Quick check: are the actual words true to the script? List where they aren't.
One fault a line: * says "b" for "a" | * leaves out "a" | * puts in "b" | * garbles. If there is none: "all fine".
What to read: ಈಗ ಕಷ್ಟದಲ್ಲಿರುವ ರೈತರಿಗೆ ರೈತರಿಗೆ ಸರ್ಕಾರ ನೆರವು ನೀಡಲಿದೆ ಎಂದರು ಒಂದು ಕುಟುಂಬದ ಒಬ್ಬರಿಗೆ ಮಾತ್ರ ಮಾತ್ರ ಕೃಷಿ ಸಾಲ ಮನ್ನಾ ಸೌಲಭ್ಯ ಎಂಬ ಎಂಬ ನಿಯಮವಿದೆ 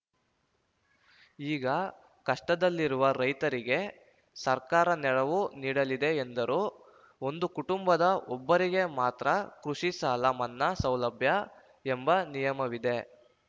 * leaves out "ರೈತರಿಗೆ"
* leaves out "ಮಾತ್ರ"
* leaves out "ಎಂಬ"